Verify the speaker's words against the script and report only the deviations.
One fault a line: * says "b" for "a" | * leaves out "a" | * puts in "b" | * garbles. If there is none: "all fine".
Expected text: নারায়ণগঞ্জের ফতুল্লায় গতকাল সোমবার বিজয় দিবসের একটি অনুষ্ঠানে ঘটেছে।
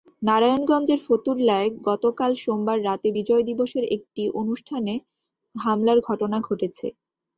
* puts in "রাতে"
* puts in "হামলার ঘটনা"